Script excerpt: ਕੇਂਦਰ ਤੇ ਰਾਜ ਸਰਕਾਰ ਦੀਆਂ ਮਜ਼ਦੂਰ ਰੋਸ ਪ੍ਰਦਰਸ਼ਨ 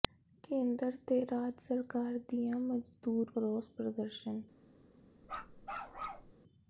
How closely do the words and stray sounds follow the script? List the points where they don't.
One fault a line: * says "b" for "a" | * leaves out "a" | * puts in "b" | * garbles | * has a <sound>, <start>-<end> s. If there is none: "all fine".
* has a bark, 5.2-6.3 s